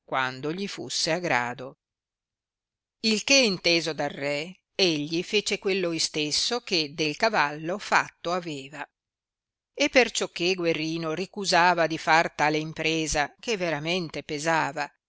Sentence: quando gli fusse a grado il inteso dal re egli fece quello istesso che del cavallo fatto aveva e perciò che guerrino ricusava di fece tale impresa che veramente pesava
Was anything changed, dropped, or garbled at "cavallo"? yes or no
no